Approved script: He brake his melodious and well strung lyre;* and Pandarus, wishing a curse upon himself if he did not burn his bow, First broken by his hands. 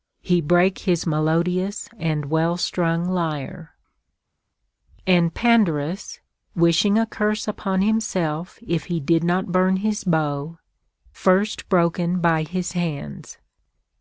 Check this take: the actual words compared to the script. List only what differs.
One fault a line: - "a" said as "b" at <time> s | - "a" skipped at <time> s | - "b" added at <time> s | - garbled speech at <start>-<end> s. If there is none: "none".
none